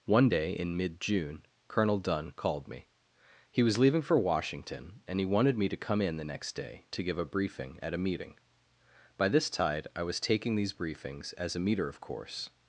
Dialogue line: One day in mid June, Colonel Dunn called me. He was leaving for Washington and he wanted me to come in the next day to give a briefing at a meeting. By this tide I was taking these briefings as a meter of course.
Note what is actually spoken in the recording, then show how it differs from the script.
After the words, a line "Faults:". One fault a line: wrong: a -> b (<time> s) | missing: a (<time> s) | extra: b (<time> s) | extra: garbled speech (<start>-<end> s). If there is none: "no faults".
One day in mid June, Colonel Dunn called me. He was leaving for Washington and he wanted me to come in the next day to give a briefing at a meeting. By this tide I was taking these briefings as a meter of course.
Faults:
no faults